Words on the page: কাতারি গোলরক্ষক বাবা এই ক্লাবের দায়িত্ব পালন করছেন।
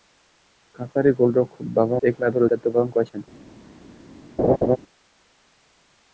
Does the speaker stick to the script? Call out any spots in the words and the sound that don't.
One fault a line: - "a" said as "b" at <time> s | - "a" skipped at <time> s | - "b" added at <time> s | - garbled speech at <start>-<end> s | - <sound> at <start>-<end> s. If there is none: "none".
- laugh at 4.4-4.8 s